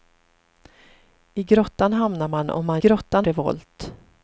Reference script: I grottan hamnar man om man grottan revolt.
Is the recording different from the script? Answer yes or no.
no